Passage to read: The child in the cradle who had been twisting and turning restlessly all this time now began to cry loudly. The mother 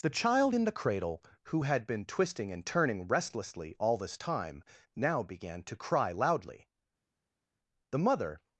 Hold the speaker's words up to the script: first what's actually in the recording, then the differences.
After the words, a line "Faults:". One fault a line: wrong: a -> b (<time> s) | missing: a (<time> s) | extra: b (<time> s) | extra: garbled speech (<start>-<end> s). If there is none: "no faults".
The child in the cradle who had been twisting and turning restlessly all this time now began to cry loudly. The mother
Faults:
no faults